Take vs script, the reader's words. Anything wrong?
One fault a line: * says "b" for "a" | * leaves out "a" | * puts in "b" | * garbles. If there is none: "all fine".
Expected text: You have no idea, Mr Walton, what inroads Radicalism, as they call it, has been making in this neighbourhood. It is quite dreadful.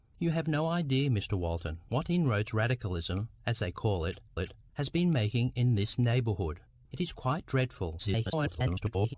* puts in "it"
* garbles